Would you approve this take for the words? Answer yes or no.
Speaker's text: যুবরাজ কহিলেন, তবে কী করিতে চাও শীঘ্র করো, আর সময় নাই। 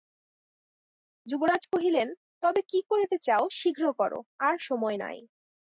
yes